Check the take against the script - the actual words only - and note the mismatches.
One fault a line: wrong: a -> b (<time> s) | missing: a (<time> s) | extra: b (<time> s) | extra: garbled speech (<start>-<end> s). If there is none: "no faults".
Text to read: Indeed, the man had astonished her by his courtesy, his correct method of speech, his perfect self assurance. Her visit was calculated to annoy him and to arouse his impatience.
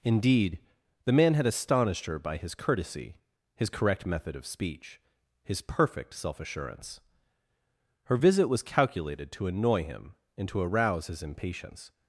no faults